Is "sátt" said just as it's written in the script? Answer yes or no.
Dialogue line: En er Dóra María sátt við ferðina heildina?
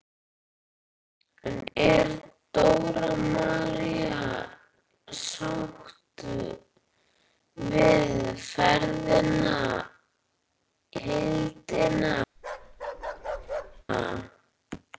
yes